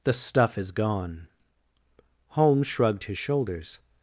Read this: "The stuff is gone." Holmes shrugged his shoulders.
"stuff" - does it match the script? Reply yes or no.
yes